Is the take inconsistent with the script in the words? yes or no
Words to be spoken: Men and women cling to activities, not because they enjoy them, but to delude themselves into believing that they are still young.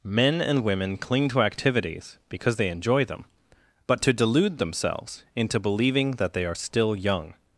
yes